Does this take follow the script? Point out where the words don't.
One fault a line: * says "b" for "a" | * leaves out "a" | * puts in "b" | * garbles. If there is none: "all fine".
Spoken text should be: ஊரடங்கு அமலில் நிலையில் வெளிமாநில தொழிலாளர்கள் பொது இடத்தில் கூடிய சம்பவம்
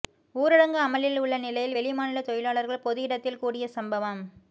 * puts in "உள்ள"